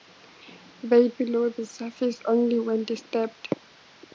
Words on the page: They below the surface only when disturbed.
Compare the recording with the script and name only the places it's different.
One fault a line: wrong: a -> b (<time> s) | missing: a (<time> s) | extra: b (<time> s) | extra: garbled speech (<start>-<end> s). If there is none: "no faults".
no faults